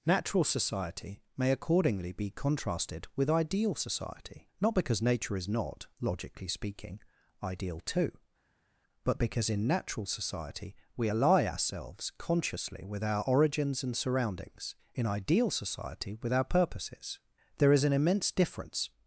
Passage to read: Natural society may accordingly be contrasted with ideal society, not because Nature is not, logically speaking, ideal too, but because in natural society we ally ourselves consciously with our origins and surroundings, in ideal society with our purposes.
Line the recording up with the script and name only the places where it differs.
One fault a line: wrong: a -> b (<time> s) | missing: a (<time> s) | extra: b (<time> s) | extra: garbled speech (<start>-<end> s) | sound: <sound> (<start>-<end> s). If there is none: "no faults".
extra: There is an immense difference (17.6 s)